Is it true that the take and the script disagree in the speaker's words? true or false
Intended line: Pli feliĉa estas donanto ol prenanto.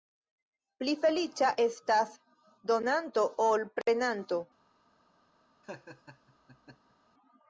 false